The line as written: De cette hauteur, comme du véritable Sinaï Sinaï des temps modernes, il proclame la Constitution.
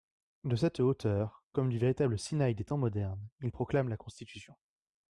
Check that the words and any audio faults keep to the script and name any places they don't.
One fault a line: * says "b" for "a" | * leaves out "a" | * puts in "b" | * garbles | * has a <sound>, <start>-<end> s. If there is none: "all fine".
* leaves out "Sinaï"